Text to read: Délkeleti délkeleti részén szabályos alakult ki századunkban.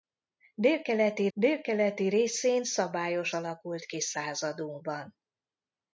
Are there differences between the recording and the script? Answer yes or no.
no